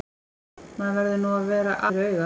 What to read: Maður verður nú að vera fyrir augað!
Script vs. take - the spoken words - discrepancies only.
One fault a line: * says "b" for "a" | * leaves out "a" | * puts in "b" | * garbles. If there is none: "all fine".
all fine